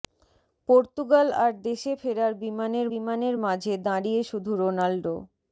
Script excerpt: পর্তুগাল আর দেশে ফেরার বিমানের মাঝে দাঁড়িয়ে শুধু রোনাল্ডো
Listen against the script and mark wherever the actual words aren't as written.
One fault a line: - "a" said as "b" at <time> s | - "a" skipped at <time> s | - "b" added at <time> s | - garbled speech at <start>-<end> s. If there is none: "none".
- "বিমানের" added at 2.9 s